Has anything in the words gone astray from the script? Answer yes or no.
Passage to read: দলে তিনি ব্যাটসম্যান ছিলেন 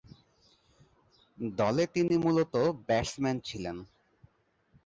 yes